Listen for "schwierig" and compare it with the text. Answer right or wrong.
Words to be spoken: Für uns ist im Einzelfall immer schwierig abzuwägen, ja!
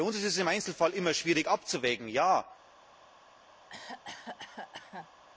right